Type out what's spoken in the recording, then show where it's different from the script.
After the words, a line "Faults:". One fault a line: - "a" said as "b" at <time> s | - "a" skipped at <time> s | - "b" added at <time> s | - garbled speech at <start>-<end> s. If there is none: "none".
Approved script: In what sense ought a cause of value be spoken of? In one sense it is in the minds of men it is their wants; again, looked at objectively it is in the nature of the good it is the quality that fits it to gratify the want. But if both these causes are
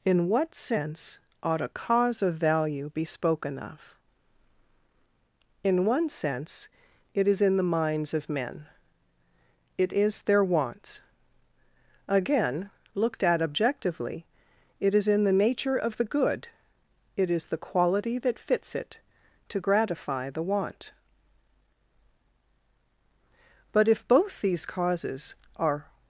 In what sense ought a cause of value be spoken of? In one sense it is in the minds of men it is their wants; again, looked at objectively it is in the nature of the good it is the quality that fits it to gratify the want. But if both these causes are
Faults:
none